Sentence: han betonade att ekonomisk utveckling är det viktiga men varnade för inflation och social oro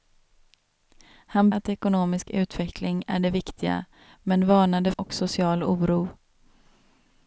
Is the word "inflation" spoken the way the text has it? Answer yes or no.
no